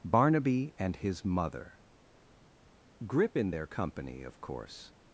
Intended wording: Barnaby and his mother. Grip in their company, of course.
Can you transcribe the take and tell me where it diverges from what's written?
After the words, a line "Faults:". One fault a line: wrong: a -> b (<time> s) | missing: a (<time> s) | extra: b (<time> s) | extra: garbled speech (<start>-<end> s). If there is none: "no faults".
Barnaby and his mother. Grip in their company, of course.
Faults:
no faults